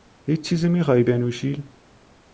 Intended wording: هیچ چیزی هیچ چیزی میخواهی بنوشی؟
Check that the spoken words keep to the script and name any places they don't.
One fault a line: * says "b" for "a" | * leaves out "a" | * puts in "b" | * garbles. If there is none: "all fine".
* leaves out "هیچ چیزی"